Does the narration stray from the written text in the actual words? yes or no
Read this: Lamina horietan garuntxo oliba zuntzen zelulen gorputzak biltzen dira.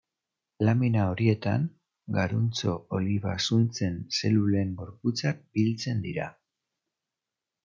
no